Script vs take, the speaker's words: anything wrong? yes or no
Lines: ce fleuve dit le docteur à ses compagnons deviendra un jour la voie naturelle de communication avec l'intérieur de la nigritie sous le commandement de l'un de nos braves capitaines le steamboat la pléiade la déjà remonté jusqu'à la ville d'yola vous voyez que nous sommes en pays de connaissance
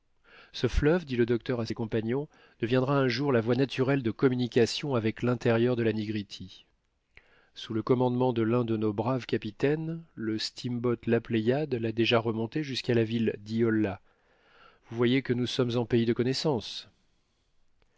no